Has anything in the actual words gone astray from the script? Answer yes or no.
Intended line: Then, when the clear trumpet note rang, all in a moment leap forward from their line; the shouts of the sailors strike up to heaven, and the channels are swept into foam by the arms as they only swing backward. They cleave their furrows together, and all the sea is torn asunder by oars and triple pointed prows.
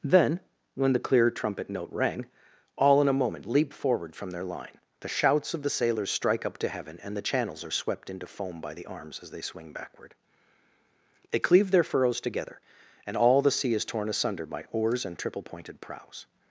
yes